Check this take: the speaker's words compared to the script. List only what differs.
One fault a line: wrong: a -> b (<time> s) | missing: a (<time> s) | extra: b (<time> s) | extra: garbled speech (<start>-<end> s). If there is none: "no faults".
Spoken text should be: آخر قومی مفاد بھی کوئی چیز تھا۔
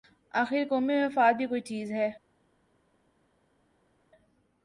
wrong: تھا -> ہے (1.9 s)